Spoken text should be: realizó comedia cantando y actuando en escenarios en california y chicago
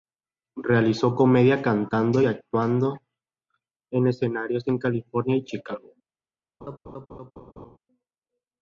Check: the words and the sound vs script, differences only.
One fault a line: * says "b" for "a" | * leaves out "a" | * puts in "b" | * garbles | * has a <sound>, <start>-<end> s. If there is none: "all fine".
* has a laugh, 6.6-7.8 s